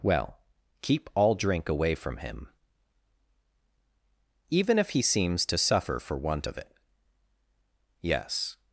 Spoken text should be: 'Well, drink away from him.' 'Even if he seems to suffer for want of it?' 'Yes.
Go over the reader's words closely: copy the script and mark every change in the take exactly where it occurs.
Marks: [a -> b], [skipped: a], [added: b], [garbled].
'Well, [added: keep all] drink away from him.' 'Even if he seems to suffer for want of it?' 'Yes.